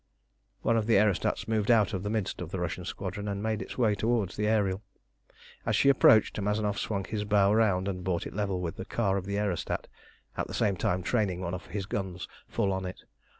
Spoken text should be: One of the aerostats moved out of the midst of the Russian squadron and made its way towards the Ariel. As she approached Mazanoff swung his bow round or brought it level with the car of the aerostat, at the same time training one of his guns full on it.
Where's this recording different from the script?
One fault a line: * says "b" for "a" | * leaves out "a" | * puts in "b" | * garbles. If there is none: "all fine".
* says "and" for "or"